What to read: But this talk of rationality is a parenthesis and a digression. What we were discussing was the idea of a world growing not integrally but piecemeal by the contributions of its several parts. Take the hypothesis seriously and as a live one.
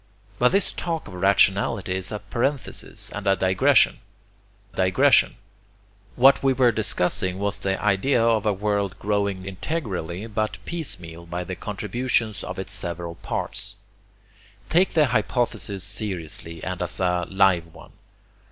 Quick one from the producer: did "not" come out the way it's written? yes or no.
no